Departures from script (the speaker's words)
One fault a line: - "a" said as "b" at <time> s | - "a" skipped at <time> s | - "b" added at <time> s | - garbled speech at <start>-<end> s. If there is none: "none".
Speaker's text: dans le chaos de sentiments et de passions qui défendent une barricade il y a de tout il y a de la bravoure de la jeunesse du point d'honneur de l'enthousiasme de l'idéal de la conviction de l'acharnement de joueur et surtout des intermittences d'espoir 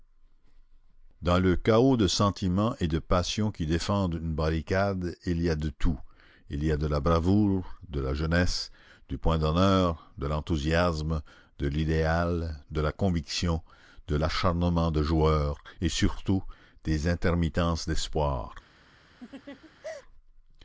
none